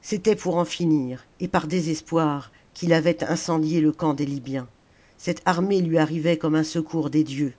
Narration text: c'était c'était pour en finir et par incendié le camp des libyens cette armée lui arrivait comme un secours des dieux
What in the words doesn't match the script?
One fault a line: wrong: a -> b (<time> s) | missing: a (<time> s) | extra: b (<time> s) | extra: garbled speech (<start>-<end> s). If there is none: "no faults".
missing: c'était (0.3 s)
extra: désespoir qu'il avait (1.7 s)